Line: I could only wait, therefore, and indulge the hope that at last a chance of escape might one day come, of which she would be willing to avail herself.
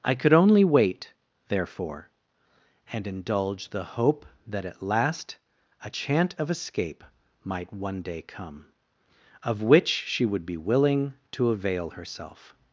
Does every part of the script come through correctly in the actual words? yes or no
no